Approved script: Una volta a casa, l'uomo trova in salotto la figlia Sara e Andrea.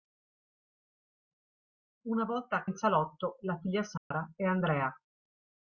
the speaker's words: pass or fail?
fail